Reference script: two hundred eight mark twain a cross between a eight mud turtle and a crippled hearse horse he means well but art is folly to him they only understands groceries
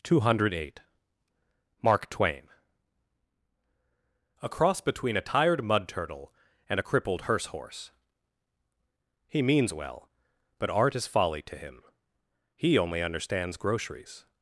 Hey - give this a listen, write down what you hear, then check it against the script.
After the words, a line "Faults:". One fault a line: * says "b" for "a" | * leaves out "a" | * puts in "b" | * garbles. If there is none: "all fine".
two hundred eight mark twain a cross between a tired mud turtle and a crippled hearse horse he means well but art is folly to him he only understands groceries
Faults:
* says "tired" for "eight"
* says "he" for "they"